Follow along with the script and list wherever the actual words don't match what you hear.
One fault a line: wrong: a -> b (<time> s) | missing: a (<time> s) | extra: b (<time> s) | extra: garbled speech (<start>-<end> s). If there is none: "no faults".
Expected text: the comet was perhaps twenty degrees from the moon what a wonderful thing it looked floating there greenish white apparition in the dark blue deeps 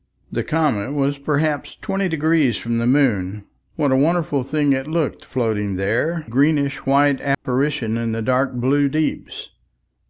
no faults